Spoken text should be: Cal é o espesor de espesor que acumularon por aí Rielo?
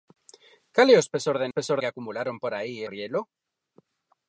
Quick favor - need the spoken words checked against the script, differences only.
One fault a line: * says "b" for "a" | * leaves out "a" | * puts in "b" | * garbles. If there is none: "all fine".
all fine